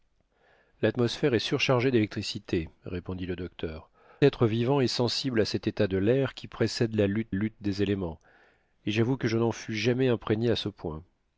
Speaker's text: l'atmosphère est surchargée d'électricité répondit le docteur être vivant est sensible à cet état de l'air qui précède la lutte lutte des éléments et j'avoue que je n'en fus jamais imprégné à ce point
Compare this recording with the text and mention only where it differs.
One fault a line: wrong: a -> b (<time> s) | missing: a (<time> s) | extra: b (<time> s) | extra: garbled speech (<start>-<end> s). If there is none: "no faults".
no faults